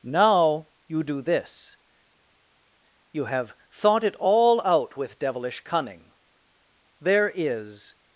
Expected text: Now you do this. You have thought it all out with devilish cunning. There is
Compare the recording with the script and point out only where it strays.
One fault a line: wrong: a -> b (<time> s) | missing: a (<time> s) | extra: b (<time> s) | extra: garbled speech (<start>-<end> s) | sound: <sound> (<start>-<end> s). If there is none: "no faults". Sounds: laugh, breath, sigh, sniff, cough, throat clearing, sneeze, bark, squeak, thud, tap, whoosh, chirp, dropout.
no faults